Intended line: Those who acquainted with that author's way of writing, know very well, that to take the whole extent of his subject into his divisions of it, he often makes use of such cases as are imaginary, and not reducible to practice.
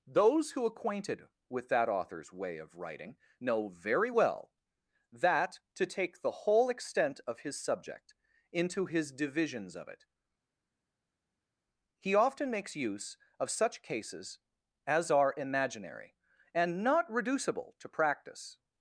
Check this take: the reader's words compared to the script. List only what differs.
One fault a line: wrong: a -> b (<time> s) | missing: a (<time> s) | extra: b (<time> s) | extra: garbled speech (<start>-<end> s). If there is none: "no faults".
no faults